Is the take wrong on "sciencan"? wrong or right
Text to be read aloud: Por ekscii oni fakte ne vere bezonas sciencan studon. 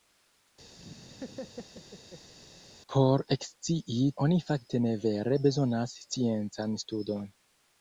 right